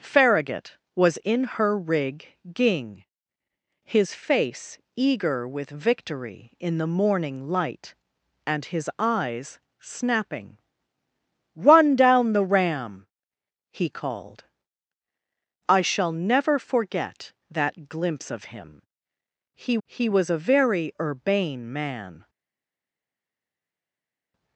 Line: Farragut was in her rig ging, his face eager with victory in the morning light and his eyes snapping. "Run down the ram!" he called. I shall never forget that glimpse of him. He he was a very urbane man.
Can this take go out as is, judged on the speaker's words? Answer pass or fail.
pass